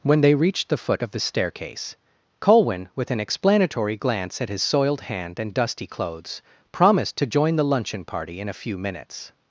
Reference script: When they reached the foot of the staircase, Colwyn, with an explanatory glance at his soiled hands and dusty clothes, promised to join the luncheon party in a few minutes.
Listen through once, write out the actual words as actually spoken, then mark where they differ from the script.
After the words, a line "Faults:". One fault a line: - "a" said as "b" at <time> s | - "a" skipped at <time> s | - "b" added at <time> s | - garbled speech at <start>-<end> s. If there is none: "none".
When they reached the foot of the staircase, Colwyn, with an explanatory glance at his soiled hand and dusty clothes, promised to join the luncheon party in a few minutes.
Faults:
- "hands" said as "hand" at 5.0 s